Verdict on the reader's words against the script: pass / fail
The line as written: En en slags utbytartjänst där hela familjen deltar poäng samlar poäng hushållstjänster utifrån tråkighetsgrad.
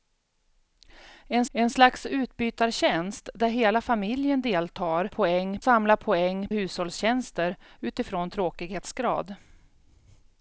pass